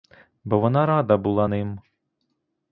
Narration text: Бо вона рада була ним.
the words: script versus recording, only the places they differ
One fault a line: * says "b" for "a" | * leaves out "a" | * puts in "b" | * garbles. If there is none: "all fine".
all fine